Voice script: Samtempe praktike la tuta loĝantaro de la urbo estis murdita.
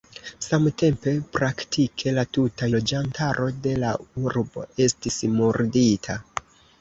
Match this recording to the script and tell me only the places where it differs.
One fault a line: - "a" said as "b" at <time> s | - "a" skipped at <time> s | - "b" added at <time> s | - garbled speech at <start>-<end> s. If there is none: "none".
none